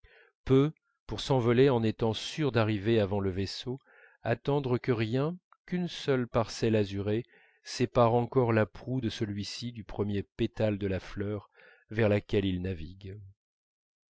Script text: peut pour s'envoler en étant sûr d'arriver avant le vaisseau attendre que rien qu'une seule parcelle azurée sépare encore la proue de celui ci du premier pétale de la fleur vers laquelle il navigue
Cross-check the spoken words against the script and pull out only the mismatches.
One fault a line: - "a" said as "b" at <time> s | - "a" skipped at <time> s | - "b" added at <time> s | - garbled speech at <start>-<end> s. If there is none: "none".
none